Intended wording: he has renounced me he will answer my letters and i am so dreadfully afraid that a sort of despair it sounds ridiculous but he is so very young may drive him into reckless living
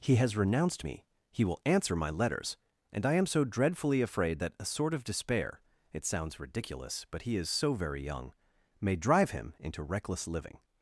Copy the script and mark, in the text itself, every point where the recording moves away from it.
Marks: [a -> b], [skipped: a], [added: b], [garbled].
he has renounced me he will answer my letters and i am so dreadfully afraid that a sort of despair it sounds ridiculous but he is so very young may drive him into reckless living